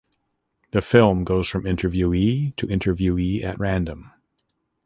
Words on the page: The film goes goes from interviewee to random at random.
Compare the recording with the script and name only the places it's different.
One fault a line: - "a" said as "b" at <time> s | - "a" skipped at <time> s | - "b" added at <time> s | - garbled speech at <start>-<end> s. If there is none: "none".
- "goes" skipped at 1.5 s
- "random" said as "interviewee" at 2.7 s